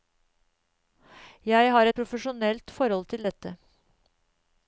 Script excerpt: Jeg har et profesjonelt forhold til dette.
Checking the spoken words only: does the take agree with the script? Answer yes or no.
yes